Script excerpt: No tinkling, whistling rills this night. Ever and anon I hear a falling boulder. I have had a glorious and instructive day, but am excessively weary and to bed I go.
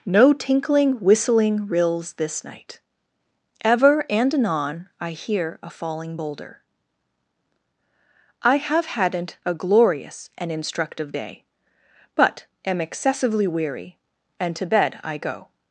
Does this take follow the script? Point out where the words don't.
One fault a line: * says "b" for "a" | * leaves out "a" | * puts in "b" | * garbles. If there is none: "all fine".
* says "hadn't" for "had"